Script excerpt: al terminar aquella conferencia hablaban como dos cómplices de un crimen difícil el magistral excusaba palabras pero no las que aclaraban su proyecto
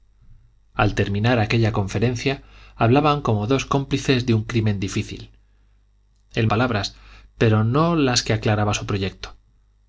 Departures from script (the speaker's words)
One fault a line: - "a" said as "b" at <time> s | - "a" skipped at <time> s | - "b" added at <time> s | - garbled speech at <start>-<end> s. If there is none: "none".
- "magistral excusaba" skipped at 6.5 s